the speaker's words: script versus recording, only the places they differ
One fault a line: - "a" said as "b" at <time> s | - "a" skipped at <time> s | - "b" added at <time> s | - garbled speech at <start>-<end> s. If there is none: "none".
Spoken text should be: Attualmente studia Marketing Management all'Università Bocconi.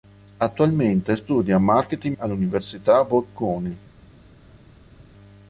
- "Management" skipped at 2.1 s